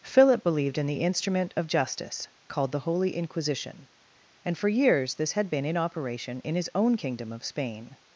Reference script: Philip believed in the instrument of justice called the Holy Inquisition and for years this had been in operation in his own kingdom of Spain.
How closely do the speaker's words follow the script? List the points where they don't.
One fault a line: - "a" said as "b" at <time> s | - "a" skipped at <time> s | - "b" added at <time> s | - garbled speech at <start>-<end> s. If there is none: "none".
none